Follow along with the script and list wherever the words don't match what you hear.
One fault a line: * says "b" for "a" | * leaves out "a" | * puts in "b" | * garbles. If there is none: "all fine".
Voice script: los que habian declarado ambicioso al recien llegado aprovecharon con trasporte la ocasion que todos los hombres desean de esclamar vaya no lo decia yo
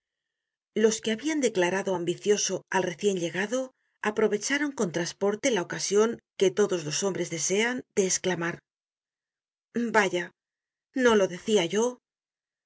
all fine